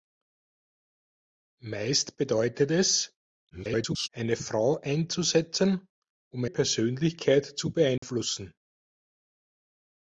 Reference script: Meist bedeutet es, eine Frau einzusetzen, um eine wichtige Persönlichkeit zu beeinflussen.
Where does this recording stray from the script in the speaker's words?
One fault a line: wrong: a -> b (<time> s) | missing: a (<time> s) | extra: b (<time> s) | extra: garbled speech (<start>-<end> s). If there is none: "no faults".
extra: garbled speech (3.5-4.1 s)
missing: eine wichtige (6.4 s)